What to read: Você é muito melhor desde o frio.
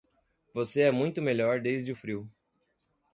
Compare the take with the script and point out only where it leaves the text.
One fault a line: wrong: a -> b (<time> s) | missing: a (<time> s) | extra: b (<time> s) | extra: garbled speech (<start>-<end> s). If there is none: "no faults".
no faults